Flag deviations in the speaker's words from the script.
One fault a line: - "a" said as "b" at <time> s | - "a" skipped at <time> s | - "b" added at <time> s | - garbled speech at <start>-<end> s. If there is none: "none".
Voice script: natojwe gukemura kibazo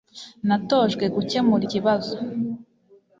none